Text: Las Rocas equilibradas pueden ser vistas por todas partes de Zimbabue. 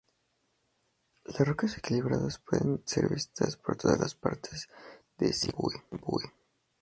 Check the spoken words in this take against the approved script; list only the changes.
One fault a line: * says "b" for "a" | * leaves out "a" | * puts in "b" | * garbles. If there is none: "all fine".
all fine